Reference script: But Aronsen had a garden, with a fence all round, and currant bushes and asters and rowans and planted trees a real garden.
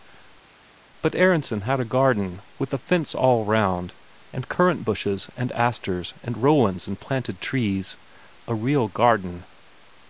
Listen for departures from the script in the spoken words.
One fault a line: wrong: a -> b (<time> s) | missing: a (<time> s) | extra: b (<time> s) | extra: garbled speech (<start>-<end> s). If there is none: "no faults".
no faults